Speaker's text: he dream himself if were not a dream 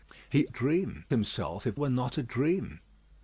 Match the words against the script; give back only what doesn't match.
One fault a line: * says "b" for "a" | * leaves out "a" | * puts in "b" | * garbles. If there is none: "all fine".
all fine